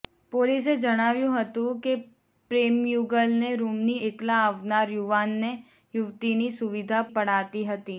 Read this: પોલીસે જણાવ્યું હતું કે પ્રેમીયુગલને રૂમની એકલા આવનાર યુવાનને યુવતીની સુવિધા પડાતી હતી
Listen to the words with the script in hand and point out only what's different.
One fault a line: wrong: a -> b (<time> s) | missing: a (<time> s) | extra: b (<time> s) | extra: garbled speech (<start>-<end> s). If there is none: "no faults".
no faults